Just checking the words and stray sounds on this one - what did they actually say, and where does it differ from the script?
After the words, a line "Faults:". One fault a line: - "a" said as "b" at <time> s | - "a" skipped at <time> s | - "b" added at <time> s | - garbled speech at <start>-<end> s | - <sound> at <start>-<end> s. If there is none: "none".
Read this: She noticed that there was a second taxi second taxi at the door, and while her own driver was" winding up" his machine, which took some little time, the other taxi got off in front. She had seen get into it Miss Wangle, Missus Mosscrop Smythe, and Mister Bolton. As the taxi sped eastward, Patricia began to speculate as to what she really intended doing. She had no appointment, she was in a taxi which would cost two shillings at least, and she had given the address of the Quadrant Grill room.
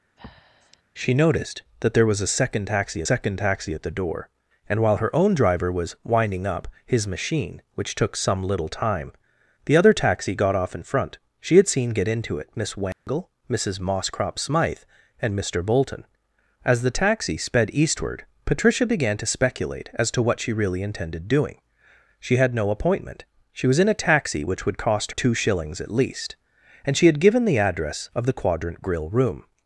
She noticed that there was a second taxi second taxi at the door, and while her own driver was" winding up" his machine, which took some little time, the other taxi got off in front. She had seen get into it Miss Wangle, Missus Mosscrop Smythe, and Mister Bolton. As the taxi sped eastward, Patricia began to speculate as to what she really intended doing. She had no appointment, she was in a taxi which would cost two shillings at least, and she had given the address of the Quadrant Grill room.
Faults:
- breath at 0.2-0.8 s
- dropout at 12.9-13.1 s